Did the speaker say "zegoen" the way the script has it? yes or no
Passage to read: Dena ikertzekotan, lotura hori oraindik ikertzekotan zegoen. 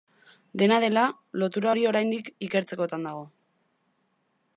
no